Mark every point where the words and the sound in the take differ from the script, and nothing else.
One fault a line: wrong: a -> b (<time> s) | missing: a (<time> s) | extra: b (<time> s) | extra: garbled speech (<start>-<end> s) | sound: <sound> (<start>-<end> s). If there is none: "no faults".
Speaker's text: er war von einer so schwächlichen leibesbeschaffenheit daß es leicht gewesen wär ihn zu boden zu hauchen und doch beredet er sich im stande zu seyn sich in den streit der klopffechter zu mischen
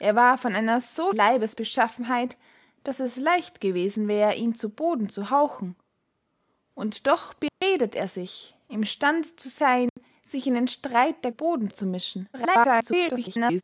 missing: schwächlichen (1.1 s)
sound: dropout (7.5-7.6 s)
sound: dropout (9.9-10.0 s)
wrong: klopffechter -> boden (11.3 s)
extra: garbled speech (12.3-13.6 s)